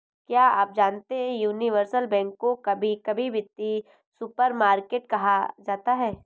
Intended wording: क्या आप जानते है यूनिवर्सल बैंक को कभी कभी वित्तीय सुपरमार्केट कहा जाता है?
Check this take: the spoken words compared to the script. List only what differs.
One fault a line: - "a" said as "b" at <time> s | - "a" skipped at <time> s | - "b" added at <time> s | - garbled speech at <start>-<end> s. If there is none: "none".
none